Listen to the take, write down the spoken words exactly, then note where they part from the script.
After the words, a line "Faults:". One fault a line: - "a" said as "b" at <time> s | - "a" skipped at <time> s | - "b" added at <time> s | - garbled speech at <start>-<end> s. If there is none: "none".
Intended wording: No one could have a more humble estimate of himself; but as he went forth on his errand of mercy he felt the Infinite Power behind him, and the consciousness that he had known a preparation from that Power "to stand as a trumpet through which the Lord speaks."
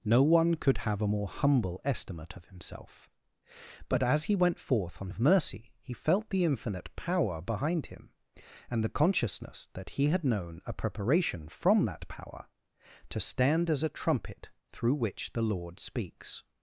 No one could have a more humble estimate of himself; but as he went forth on of mercy he felt the Infinite Power behind him, and the consciousness that he had known a preparation from that Power "to stand as a trumpet through which the Lord speaks."
Faults:
- "his errand" skipped at 5.1 s